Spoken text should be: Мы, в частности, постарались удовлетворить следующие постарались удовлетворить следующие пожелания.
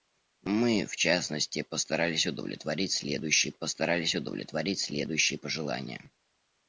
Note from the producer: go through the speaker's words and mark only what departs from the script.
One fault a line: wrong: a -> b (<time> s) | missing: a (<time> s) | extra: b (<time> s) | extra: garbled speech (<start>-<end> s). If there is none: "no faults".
no faults